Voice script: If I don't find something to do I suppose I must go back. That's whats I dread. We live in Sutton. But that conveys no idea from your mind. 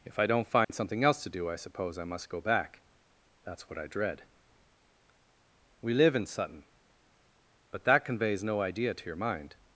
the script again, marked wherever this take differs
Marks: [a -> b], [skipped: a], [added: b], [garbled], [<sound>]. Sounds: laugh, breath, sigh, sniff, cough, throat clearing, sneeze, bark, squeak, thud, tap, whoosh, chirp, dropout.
If I don't find [dropout] something [added: else] to do I suppose I must go back. That's [whats -> what] I dread. We live in Sutton. But that conveys no idea [from -> to] your mind.